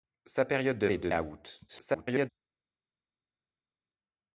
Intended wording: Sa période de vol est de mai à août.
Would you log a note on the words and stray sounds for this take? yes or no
yes